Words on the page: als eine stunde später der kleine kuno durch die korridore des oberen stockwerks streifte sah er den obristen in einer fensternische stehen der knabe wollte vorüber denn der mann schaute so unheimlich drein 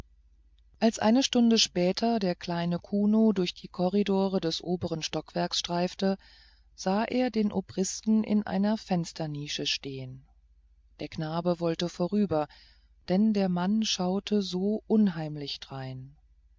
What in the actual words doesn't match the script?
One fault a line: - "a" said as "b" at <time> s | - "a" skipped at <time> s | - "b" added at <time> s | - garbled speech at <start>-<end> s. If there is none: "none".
none